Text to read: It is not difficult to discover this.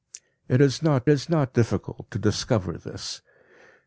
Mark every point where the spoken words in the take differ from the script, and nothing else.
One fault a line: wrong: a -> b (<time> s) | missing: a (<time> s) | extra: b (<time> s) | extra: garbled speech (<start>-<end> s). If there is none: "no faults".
extra: is not (1.1 s)